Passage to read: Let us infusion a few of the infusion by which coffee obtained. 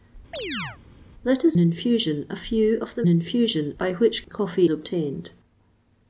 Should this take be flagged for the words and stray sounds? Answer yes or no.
yes